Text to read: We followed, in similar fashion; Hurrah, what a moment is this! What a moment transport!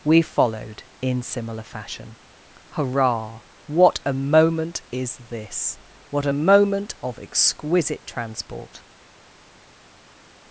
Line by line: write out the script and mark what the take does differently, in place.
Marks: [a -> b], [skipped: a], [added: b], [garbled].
We followed, in similar fashion; Hurrah, what a moment is this! What a moment [added: of exquisite] transport!